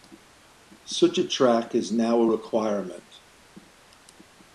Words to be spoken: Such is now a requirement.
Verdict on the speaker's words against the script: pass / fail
fail